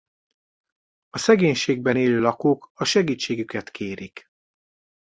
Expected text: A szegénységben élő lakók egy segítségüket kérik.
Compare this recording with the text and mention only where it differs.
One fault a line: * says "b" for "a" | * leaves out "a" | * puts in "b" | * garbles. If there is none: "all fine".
* says "a" for "egy"